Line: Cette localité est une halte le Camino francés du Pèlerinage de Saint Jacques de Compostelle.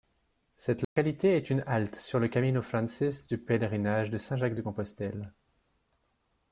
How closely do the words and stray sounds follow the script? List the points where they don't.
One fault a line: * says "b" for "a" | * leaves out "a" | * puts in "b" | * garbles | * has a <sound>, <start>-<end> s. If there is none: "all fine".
* has a dropout, 0.8-1.0 s
* puts in "sur"